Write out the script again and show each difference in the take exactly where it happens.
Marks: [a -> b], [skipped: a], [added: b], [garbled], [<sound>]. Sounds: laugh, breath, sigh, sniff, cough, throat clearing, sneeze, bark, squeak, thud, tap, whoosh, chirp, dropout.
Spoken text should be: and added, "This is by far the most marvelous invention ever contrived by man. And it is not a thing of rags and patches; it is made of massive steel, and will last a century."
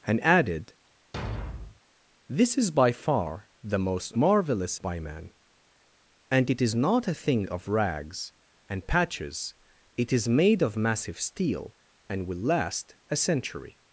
and added, [thud] "This is by far the most marvelous [skipped: invention ever contrived] by man. And it is not a thing of rags and patches; it is made of massive steel, and will last a century."